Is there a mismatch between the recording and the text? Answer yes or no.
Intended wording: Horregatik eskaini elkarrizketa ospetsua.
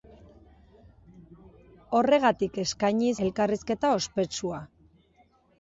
no